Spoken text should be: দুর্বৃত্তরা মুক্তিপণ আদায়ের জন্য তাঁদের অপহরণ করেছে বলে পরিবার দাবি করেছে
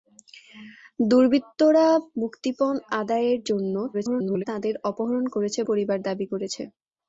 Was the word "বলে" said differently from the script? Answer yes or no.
yes